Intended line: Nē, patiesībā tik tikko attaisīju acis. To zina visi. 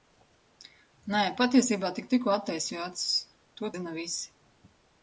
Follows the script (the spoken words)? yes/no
yes